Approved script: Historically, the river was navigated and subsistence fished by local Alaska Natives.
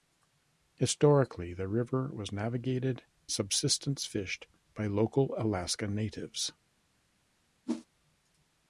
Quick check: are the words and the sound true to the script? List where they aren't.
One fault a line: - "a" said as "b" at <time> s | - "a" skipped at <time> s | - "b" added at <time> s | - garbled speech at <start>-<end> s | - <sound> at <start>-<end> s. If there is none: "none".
- "and" skipped at 3.0 s
- whoosh at 7.7-7.9 s